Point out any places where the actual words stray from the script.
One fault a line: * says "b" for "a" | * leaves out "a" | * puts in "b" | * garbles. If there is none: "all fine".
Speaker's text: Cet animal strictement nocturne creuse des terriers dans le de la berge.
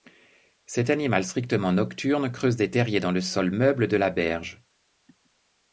* puts in "sol meuble"